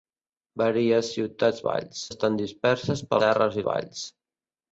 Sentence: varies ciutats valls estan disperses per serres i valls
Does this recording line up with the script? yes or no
yes